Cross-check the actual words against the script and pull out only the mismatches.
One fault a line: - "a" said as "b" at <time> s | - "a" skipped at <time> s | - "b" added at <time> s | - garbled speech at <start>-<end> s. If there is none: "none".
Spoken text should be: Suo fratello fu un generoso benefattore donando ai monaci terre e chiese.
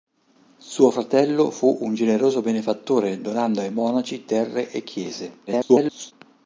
- garbled speech at 5.5-6.1 s